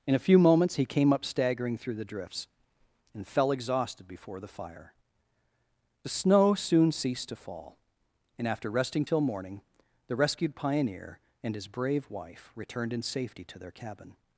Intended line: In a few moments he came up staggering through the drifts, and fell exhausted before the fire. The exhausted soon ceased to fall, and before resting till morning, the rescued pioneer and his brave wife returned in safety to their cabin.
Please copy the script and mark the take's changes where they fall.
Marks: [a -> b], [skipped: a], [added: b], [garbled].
In a few moments he came up staggering through the drifts, and fell exhausted before the fire. The [exhausted -> snow] soon ceased to fall, and [before -> after] resting till morning, the rescued pioneer and his brave wife returned in safety to their cabin.